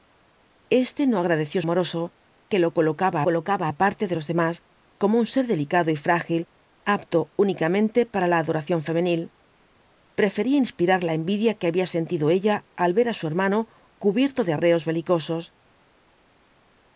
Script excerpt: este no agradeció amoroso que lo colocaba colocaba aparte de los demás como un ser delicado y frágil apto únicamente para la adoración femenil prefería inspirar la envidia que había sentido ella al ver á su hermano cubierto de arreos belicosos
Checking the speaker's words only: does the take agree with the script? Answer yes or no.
yes